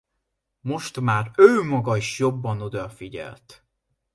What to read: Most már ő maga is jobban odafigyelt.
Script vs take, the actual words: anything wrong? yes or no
no